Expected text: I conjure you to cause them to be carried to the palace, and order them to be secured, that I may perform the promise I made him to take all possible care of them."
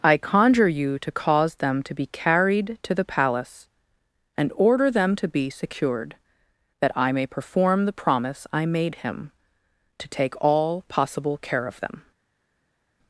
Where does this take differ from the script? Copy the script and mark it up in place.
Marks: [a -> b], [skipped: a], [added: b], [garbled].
I conjure you to cause them to be carried to the palace, and order them to be secured, that I may perform the promise I made him to take all possible care of them."